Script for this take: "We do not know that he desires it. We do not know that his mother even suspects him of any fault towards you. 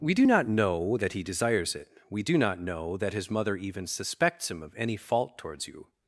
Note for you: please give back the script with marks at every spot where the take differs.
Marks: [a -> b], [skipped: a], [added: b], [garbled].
"We do not know that he desires it. We do not know that his mother even suspects him of any fault towards you.